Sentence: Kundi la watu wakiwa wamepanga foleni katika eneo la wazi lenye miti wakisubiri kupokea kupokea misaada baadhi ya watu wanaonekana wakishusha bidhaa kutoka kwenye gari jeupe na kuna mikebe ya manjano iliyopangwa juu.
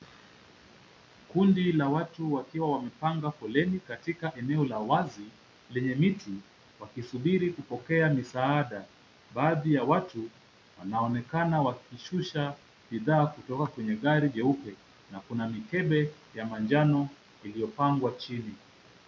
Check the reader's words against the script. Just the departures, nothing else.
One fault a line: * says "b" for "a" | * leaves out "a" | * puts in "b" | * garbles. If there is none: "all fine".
* leaves out "kupokea"
* says "chini" for "juu"